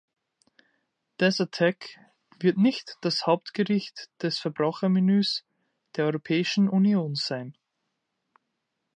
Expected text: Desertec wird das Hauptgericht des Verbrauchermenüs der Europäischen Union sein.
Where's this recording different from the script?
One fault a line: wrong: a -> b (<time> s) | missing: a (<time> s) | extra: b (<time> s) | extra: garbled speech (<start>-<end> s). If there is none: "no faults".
extra: nicht (2.6 s)